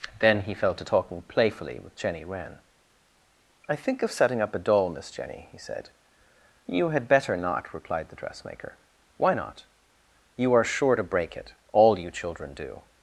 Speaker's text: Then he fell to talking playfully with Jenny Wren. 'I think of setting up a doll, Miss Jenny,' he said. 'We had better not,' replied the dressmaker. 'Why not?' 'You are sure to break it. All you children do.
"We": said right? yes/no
no